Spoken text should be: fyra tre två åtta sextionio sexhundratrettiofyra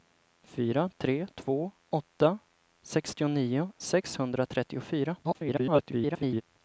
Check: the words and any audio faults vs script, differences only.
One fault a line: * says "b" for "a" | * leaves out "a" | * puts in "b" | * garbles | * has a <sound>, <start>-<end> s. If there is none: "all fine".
* garbles